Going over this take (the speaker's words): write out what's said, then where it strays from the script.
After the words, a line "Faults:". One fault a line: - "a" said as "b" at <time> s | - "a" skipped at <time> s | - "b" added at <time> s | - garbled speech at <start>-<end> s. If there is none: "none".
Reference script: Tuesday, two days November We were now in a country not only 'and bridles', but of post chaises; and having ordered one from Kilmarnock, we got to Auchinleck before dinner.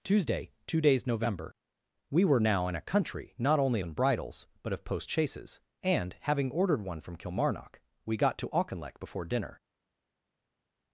Tuesday, two days November We were now in a country not only 'and bridles', but of post chaises; and having ordered one from Kilmarnock, we got to Auchinleck before dinner.
Faults:
none